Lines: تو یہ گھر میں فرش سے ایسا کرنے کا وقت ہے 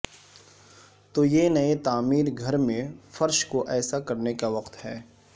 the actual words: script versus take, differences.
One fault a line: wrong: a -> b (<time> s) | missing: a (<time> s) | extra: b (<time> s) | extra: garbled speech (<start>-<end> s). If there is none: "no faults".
extra: نئے تعمیر (1.5 s)
wrong: سے -> کو (3.5 s)